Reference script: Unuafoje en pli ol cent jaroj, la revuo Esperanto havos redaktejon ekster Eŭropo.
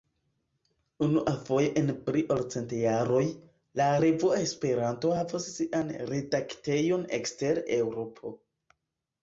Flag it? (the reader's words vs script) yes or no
yes